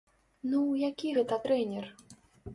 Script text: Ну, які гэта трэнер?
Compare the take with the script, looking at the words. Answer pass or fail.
pass